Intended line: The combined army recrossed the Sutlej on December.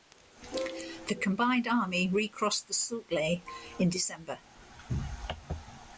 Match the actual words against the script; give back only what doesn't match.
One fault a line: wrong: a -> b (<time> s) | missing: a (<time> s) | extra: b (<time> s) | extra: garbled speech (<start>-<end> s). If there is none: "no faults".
wrong: on -> in (3.8 s)